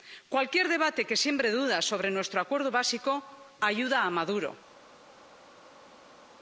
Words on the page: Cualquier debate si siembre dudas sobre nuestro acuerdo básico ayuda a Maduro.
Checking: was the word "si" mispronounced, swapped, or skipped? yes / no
yes